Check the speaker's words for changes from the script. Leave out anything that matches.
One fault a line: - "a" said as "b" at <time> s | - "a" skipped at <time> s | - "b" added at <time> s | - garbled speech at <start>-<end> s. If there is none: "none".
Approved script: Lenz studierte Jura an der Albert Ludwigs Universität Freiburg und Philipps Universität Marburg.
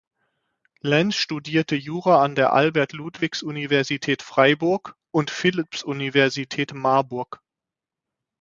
none